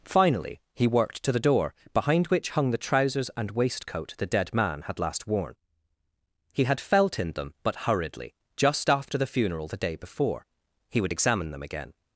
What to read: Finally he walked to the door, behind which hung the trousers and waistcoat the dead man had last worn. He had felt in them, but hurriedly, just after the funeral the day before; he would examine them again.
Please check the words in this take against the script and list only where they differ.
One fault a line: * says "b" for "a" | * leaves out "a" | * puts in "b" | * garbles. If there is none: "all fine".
* says "worked" for "walked"